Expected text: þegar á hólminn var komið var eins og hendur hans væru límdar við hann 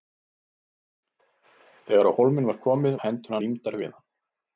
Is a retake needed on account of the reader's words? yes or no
yes